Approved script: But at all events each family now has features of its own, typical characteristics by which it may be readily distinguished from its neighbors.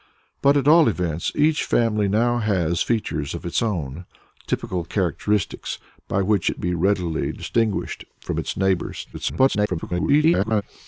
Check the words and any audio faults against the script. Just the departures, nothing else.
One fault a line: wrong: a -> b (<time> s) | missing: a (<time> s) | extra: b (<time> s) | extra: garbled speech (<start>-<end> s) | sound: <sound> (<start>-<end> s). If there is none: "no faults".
missing: may (6.6 s)
extra: garbled speech (9.1-10.6 s)